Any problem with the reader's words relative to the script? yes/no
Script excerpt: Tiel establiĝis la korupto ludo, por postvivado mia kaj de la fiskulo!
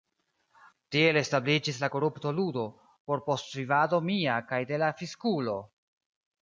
no